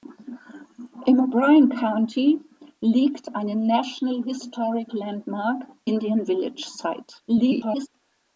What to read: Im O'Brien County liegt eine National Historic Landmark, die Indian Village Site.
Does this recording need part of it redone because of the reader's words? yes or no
yes